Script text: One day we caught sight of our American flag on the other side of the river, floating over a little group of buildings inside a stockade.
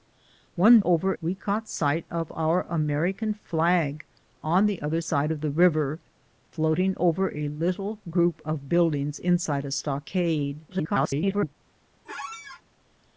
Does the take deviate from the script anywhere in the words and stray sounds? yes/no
yes